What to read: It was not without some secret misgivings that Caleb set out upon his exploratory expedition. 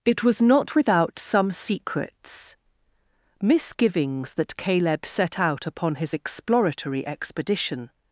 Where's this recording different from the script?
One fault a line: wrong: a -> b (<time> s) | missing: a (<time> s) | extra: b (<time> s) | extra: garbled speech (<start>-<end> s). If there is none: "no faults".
wrong: secret -> secrets (1.5 s)